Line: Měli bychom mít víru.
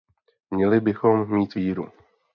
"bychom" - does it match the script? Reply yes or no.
yes